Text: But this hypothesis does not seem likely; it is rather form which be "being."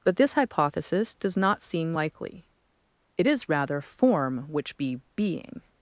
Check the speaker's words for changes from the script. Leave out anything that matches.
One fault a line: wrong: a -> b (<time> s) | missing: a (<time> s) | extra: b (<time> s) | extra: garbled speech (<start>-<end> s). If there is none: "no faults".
no faults